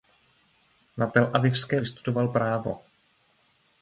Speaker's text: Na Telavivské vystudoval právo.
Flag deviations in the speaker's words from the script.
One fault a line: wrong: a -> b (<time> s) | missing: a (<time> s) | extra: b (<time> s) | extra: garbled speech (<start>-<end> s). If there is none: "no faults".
no faults